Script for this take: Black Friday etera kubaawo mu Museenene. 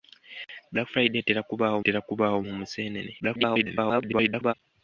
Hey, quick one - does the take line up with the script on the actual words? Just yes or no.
no